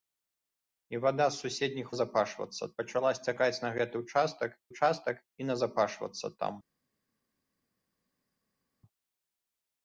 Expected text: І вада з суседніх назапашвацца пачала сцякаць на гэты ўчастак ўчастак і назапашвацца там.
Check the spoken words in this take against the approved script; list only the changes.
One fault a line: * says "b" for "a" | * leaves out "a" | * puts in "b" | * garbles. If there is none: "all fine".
all fine